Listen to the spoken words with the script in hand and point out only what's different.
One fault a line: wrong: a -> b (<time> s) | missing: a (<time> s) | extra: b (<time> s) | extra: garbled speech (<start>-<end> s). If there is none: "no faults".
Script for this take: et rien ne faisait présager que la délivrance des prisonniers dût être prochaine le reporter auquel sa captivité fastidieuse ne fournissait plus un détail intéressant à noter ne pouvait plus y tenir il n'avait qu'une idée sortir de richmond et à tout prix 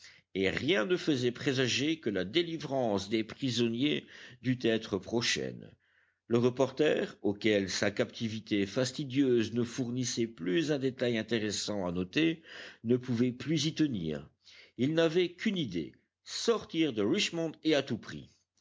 no faults